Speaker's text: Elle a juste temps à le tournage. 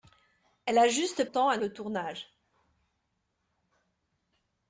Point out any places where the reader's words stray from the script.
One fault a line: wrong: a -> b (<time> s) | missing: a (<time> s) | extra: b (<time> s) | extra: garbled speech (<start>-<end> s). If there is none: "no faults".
no faults